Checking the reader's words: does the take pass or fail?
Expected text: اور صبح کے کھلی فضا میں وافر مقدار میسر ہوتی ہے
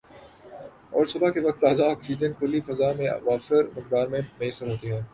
fail